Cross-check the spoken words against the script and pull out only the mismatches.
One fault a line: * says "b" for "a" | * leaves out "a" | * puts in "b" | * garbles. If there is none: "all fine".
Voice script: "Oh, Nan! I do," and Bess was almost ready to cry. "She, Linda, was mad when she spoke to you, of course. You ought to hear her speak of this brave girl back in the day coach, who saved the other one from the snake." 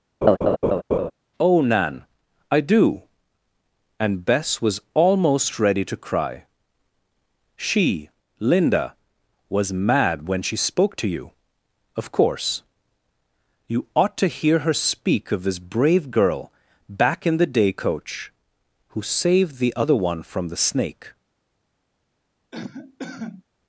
all fine